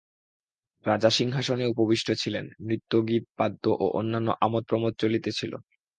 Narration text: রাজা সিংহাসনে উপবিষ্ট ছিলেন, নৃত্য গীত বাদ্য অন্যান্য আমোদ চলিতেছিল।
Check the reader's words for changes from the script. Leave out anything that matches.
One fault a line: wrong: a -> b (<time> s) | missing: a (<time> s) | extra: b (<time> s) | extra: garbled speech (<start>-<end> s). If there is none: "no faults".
extra: ও (3.7 s)
extra: প্রমোদ (4.7 s)